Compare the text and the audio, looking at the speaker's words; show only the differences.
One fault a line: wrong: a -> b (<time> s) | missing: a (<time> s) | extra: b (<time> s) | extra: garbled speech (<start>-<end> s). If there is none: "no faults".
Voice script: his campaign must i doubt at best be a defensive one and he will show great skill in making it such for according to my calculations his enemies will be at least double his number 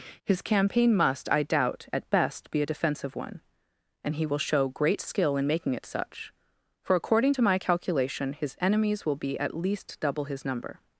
wrong: calculations -> calculation (7.6 s)